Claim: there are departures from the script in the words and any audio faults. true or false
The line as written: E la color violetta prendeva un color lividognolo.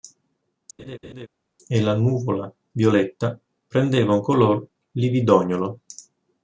true